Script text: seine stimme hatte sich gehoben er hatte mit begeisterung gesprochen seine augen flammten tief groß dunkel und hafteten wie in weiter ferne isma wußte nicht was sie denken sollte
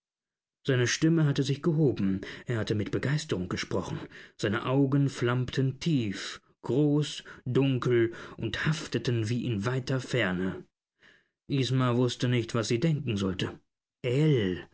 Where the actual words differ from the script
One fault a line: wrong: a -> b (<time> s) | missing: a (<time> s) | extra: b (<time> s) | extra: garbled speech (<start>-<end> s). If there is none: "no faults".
no faults